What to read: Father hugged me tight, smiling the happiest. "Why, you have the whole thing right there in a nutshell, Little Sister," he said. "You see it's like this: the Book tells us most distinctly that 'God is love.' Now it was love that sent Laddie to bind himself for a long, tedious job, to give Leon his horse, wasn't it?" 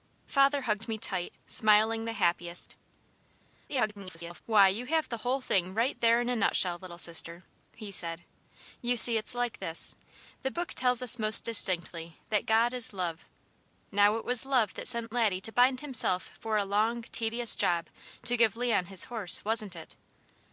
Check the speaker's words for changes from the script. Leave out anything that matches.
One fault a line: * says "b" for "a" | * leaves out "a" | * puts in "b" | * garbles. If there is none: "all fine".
* garbles